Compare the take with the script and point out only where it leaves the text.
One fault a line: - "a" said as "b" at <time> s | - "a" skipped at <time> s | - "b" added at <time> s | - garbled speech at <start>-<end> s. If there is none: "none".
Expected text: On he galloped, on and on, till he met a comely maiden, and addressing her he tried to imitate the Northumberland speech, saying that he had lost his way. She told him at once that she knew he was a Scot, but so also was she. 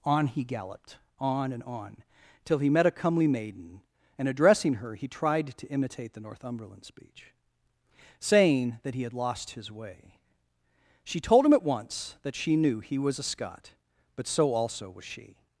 none